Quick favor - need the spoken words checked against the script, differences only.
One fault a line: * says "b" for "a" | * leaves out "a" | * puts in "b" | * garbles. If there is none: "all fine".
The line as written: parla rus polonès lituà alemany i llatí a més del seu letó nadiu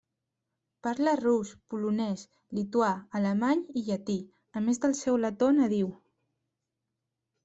all fine